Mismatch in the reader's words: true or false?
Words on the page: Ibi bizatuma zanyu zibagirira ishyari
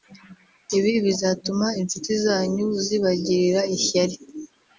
true